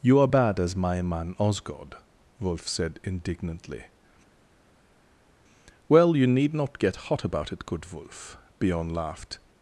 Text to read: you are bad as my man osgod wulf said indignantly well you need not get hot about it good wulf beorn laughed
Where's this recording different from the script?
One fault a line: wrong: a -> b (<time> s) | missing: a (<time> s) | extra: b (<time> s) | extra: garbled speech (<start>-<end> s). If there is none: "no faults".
no faults